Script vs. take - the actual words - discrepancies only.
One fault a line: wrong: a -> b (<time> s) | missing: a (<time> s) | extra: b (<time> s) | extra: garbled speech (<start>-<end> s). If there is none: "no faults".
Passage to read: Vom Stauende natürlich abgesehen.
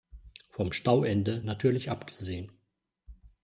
no faults